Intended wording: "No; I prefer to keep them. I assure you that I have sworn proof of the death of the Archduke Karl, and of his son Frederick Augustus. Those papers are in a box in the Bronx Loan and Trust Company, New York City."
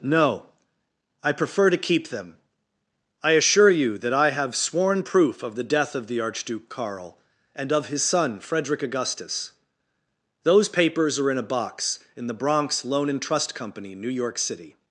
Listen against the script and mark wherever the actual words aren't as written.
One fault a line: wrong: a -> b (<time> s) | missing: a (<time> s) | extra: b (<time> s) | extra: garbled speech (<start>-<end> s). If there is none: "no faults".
no faults